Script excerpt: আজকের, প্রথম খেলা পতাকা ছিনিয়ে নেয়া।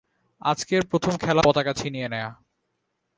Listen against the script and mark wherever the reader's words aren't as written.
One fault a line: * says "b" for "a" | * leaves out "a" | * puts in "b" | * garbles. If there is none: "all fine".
all fine